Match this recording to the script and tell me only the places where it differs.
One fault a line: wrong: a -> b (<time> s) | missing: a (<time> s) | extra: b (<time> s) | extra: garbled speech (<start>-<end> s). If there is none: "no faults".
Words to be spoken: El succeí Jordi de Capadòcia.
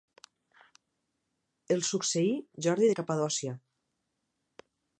no faults